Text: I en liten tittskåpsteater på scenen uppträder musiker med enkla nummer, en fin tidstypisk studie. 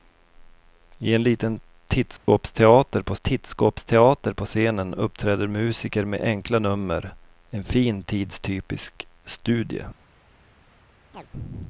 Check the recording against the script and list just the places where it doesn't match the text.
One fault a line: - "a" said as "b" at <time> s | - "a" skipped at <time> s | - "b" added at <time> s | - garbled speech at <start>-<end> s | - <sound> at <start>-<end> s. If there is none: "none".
- dropout at 2.2-2.3 s
- "tittskåpsteater på" added at 3.2 s
- chirp at 11.1-11.3 s